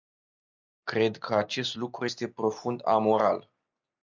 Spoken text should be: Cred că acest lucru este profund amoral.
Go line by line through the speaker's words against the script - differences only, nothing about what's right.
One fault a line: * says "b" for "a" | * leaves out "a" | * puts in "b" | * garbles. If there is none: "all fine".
all fine